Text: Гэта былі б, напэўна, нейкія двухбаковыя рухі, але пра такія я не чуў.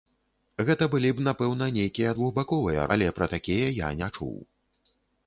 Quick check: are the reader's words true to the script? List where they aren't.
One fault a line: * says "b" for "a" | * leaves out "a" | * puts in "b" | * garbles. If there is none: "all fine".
* leaves out "рухі"